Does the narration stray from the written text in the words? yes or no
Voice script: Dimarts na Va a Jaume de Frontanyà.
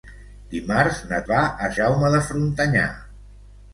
no